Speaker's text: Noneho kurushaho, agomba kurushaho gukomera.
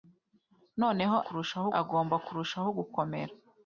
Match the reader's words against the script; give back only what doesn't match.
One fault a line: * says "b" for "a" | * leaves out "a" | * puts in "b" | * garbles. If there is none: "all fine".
all fine